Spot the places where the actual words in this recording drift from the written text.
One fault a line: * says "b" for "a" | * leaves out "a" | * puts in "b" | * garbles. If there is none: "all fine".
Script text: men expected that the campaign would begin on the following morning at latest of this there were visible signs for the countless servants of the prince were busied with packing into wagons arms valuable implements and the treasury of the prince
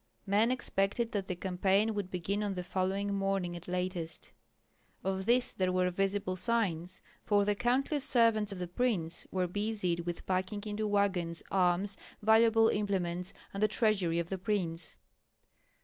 all fine